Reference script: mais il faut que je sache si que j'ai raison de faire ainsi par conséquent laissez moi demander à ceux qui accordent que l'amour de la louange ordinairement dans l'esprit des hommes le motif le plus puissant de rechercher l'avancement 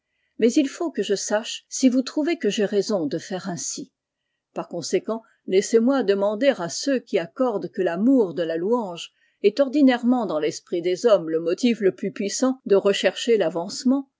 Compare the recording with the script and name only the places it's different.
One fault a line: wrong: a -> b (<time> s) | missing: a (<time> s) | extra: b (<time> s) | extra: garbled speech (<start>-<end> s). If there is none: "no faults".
extra: vous trouvez (1.9 s)
extra: est (9.4 s)